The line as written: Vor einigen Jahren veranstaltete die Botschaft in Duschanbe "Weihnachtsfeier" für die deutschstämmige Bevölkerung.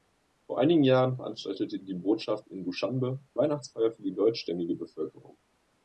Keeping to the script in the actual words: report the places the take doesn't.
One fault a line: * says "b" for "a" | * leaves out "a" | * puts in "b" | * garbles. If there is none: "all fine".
all fine